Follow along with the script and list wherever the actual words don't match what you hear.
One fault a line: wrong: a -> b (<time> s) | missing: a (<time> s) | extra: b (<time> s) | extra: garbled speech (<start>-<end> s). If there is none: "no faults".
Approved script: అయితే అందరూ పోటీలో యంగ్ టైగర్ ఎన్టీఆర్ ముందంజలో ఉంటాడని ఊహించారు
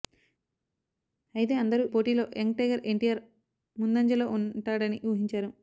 no faults